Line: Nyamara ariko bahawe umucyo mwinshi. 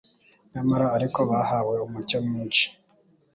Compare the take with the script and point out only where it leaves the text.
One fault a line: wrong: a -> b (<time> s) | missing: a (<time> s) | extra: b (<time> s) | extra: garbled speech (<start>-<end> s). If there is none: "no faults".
no faults